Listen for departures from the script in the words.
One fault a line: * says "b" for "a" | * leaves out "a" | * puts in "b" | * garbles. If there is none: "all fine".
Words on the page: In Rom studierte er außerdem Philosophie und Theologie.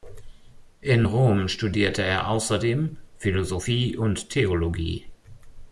all fine